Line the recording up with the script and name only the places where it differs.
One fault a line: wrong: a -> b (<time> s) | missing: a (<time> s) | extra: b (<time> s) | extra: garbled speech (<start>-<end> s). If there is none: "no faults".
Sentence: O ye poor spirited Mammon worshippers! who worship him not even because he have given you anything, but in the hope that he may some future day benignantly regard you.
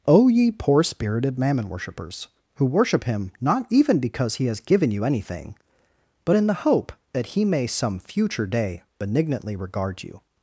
wrong: have -> has (4.5 s)